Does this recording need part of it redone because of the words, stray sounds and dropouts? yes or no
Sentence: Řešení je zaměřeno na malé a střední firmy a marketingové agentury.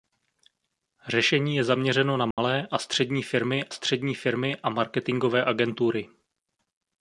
yes